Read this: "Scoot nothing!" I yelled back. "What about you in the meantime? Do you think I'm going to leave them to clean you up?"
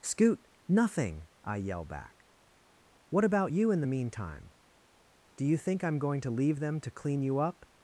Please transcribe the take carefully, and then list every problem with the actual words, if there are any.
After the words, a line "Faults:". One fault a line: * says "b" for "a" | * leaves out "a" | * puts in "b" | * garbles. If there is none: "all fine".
"Scoot nothing!" I yell back. "What about you in the meantime? Do you think I'm going to leave them to clean you up?"
Faults:
* says "yell" for "yelled"